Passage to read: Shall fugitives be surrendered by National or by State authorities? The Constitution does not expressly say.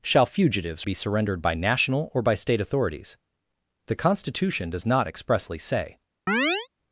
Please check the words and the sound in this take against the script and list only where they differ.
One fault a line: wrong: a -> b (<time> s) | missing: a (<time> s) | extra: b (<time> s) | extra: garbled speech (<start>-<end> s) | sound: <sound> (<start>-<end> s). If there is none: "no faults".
sound: chirp (6.3-6.7 s)